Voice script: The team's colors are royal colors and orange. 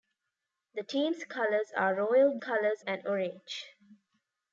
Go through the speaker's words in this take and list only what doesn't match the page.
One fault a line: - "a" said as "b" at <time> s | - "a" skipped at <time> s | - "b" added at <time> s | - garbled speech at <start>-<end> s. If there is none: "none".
none